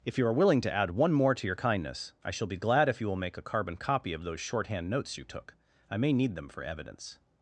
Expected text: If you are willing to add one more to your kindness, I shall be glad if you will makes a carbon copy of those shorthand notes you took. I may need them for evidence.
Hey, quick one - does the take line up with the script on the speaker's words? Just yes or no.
no